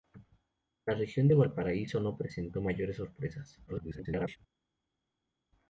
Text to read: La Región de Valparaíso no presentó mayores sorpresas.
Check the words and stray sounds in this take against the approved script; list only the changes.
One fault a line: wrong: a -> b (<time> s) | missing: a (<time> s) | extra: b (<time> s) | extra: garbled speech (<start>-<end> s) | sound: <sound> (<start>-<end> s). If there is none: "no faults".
extra: garbled speech (3.7-4.4 s)